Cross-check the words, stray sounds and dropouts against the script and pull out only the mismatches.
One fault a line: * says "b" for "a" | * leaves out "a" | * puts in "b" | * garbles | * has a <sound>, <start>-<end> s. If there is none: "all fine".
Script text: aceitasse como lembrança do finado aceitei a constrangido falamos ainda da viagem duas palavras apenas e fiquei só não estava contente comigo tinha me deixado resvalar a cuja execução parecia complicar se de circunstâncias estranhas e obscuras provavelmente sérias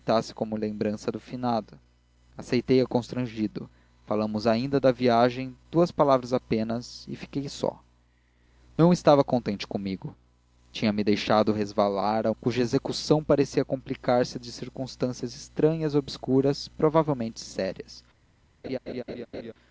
* has a laugh, 18.6-19.5 s